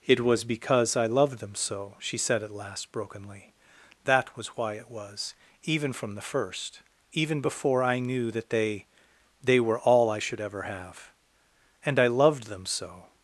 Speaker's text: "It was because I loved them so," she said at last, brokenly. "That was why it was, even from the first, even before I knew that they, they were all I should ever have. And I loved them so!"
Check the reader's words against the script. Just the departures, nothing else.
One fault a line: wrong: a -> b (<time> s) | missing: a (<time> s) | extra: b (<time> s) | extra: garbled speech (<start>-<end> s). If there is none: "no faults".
no faults